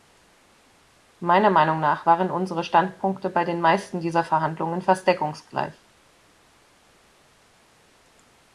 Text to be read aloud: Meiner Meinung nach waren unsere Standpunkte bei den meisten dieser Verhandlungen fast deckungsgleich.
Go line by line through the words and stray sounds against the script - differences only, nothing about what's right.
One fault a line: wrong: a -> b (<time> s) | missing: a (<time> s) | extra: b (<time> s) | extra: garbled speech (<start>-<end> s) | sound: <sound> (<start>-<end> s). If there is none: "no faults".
no faults